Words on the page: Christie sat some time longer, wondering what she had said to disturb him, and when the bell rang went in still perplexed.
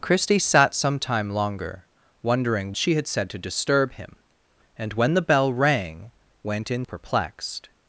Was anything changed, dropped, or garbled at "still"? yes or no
yes